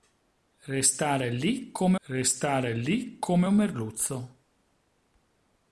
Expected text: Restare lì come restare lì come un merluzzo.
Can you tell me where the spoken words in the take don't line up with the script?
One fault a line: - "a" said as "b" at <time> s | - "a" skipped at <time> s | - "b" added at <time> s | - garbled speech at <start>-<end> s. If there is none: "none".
none